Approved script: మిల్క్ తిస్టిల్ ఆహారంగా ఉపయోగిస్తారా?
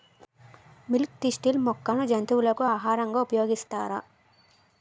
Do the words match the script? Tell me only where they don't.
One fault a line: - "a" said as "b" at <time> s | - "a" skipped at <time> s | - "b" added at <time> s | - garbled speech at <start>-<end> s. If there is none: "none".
- "మొక్కను జంతువులకు" added at 1.7 s